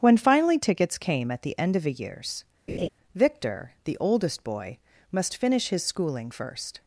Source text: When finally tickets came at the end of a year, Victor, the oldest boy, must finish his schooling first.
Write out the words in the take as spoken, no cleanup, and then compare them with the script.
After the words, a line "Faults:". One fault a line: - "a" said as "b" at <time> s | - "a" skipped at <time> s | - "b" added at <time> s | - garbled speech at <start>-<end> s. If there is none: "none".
When finally tickets came at the end of a years, Victor, the oldest boy, must finish his schooling first.
Faults:
- "year" said as "years" at 1.9 s